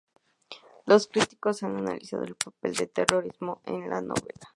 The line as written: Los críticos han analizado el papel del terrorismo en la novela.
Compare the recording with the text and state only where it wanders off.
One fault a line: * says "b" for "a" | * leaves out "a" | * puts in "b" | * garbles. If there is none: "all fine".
all fine